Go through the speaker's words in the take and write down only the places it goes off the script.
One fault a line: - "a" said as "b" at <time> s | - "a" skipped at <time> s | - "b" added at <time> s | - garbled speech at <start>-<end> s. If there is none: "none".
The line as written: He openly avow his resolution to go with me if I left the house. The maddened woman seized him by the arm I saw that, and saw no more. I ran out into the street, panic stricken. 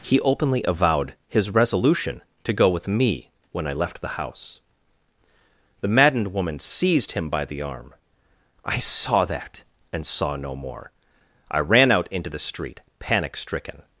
- "avow" said as "avowed" at 0.7 s
- "if" said as "when" at 3.5 s